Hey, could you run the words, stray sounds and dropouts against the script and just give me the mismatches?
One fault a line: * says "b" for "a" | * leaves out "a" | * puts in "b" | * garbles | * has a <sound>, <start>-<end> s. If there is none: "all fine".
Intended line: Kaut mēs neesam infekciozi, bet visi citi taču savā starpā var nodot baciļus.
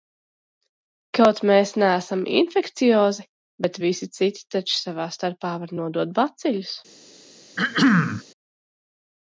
* has a throat clearing, 7.6-8.2 s